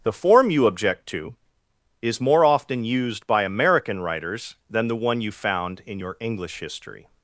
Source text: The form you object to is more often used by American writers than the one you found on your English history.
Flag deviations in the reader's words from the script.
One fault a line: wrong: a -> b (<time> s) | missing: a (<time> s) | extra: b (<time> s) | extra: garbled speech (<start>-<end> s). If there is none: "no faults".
wrong: on -> in (5.8 s)